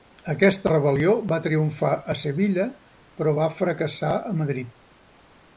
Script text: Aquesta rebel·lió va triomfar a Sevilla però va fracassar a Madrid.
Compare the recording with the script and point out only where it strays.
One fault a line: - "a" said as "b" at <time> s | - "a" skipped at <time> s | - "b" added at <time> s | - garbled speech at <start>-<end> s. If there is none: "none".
none